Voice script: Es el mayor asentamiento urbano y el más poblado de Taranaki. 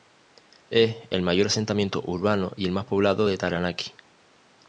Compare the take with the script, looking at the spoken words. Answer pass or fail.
pass